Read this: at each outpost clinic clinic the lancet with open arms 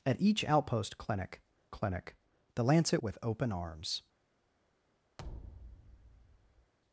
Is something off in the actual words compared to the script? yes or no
no